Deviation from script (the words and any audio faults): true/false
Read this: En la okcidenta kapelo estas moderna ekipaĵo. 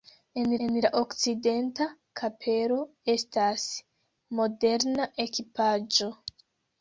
true